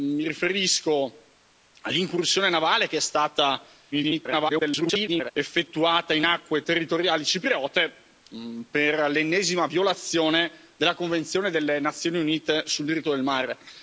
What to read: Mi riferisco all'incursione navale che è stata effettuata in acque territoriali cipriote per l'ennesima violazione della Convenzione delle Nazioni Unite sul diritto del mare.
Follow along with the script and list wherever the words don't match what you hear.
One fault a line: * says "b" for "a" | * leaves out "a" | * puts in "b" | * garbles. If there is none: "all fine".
* garbles